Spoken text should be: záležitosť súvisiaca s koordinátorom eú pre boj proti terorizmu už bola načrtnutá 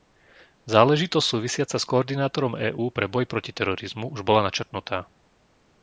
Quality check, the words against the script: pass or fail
pass